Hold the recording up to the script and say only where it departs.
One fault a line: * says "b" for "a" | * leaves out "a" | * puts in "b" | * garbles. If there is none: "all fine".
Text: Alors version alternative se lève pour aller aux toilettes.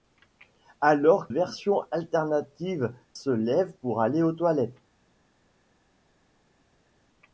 all fine